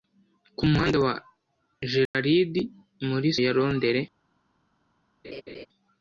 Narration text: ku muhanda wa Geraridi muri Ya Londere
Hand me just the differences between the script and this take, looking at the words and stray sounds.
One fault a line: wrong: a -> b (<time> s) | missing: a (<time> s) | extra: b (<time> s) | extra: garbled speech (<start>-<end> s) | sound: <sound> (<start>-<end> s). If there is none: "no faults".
sound: dropout (2.1-2.1 s)
sound: laugh (5.2-5.7 s)